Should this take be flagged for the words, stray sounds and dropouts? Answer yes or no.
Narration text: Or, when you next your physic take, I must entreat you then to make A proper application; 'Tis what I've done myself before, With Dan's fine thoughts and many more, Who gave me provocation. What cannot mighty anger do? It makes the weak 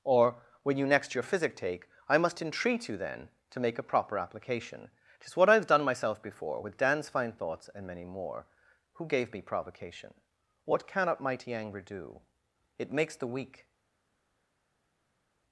no